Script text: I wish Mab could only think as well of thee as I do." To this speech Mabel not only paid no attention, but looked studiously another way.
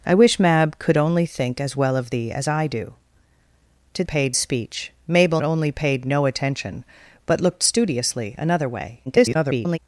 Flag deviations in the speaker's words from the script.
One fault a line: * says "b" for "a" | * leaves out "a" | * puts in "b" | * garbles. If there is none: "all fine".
* says "paid" for "this"
* leaves out "not"
* garbles